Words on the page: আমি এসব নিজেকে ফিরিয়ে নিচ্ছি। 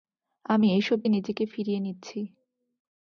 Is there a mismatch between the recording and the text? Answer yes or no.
no